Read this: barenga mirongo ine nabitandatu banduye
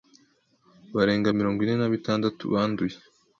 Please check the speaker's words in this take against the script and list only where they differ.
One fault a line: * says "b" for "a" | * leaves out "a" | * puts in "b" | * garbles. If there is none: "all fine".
all fine